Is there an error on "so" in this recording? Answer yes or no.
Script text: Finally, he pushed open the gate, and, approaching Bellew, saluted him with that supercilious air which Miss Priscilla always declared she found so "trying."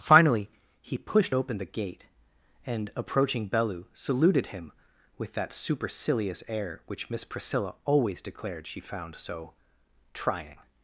no